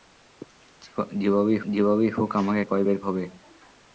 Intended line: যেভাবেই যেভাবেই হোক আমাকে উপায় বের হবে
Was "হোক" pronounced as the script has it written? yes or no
yes